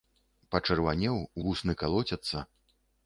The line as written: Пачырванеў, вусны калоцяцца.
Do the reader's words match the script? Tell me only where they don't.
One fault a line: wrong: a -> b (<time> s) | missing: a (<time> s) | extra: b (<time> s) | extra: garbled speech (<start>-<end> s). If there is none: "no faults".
no faults